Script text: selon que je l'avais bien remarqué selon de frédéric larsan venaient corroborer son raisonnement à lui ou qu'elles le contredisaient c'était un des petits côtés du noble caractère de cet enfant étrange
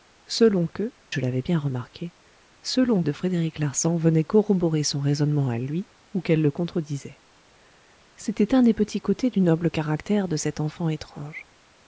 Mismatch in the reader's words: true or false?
false